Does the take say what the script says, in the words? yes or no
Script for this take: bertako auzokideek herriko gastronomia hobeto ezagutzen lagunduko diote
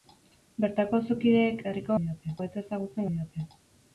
no